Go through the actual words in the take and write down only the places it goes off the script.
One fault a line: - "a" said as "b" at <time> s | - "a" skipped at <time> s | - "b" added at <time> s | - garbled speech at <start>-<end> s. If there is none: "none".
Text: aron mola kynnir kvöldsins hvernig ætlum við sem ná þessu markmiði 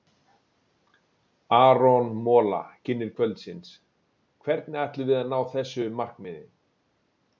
- "sem" said as "að" at 5.2 s